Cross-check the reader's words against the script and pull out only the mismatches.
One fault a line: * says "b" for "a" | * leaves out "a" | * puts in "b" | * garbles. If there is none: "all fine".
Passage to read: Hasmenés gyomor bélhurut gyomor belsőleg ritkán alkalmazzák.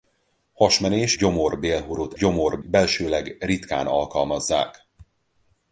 all fine